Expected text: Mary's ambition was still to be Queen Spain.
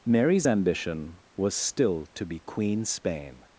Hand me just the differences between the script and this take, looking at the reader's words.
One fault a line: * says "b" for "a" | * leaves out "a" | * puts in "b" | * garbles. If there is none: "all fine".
all fine